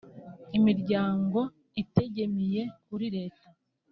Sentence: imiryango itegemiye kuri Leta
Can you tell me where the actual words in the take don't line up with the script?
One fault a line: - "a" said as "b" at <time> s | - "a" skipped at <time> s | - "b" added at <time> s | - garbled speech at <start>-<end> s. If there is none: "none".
none